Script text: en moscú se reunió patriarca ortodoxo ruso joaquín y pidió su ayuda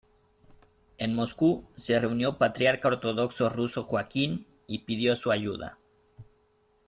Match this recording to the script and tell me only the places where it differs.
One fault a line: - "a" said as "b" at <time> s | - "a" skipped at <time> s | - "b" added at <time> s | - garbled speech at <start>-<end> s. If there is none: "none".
none